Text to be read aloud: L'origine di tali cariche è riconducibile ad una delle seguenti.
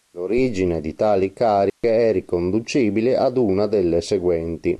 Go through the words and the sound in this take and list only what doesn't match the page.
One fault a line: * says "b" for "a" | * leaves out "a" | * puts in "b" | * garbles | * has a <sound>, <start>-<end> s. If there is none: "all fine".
* has a dropout, 1.7-1.8 s